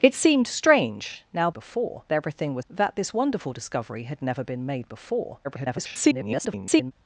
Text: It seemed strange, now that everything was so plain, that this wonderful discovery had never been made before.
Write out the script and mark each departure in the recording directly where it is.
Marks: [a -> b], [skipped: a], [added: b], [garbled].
It seemed strange, now [that -> before] everything was [skipped: so plain,] that this wonderful discovery had never been made before. [garbled]